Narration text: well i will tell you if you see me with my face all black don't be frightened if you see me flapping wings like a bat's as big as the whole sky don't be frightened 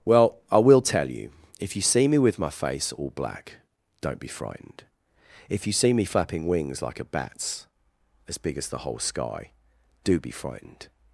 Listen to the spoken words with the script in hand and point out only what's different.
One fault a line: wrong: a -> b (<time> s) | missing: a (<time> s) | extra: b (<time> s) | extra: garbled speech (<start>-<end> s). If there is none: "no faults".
wrong: don't -> do (10.0 s)